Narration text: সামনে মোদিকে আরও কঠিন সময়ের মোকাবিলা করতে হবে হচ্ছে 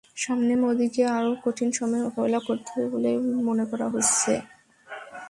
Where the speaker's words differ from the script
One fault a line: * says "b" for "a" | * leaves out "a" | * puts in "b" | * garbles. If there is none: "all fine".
* puts in "বলে মনে করা"